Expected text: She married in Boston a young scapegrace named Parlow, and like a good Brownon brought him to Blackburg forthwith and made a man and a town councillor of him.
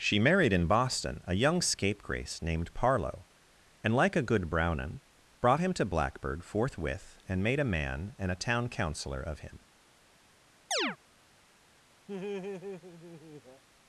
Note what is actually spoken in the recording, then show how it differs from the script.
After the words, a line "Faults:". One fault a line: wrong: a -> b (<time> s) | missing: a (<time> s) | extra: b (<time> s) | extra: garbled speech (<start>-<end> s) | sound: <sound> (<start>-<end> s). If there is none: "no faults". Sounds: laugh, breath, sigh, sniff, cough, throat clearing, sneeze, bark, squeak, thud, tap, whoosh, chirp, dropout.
She married in Boston a young scapegrace named Parlow, and like a good Brownon brought him to Blackburg forthwith and made a man and a town councillor of him.
Faults:
sound: chirp (10.7-11.0 s)
sound: laugh (12.1-13.6 s)